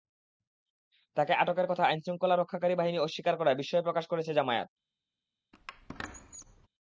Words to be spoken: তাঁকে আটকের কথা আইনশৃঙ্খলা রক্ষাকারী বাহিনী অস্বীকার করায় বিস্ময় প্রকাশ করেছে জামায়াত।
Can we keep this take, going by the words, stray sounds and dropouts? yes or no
no